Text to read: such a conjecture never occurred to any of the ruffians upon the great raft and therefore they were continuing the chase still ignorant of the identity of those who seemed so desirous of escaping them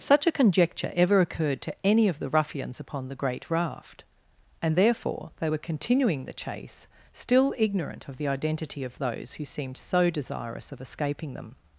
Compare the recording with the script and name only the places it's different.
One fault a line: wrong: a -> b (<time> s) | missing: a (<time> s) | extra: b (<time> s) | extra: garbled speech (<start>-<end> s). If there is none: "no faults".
wrong: never -> ever (0.9 s)